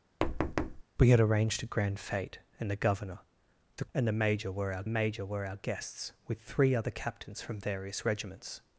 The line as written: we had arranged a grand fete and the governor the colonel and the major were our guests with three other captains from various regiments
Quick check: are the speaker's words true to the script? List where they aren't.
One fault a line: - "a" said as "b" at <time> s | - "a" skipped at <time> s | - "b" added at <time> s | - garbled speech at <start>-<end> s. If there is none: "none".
- "colonel" skipped at 3.8 s
- "major were our" added at 4.9 s